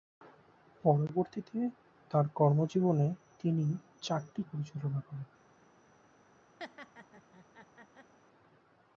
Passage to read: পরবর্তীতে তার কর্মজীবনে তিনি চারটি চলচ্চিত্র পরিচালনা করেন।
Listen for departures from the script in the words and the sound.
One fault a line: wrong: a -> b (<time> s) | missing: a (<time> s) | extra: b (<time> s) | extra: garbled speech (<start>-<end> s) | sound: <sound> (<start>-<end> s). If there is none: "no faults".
missing: চলচ্চিত্র (4.4 s)
sound: laugh (6.6-8.1 s)